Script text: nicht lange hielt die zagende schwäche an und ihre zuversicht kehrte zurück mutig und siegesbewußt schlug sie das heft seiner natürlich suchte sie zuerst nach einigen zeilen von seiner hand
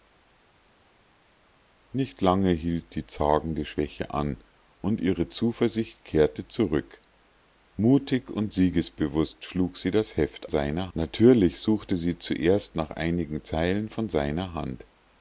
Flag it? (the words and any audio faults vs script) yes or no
no